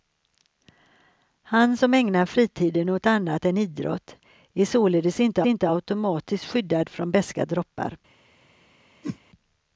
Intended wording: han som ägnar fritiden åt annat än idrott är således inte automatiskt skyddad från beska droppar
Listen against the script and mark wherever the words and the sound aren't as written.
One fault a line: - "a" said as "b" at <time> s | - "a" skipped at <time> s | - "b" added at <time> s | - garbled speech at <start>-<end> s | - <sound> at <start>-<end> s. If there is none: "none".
- "inte" added at 5.4 s
- whoosh at 9.0-9.2 s